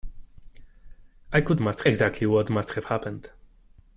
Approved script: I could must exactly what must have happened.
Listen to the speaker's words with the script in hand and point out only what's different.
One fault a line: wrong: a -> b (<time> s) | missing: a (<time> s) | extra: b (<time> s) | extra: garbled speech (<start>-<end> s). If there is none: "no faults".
no faults